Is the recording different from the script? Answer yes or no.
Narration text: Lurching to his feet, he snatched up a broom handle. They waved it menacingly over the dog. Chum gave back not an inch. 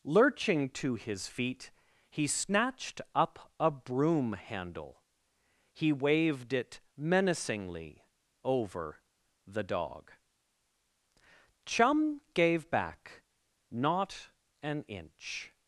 yes